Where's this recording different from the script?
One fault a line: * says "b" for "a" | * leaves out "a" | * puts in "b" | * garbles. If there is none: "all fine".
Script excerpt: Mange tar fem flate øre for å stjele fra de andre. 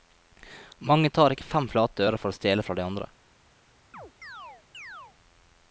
* puts in "ikke"